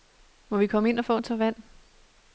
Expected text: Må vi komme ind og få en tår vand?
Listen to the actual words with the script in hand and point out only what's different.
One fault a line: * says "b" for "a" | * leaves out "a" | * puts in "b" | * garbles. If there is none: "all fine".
all fine